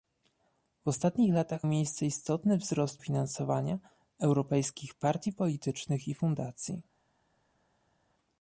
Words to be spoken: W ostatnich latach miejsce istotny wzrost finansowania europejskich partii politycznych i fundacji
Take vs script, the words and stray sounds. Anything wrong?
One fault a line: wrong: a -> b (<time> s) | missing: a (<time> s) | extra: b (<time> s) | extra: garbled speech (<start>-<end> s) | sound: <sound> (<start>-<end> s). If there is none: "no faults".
no faults